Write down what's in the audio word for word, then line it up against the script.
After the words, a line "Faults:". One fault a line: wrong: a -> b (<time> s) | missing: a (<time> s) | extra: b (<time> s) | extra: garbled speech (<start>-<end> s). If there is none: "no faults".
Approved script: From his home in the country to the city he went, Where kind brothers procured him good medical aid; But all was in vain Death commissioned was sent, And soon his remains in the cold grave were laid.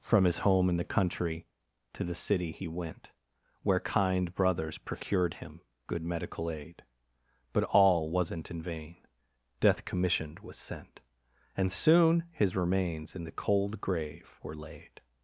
From his home in the country to the city he went, Where kind brothers procured him good medical aid; But all wasn't in vain Death commissioned was sent, And soon his remains in the cold grave were laid.
Faults:
wrong: was -> wasn't (8.1 s)